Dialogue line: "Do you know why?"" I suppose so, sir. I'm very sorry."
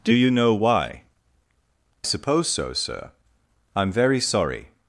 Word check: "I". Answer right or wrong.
wrong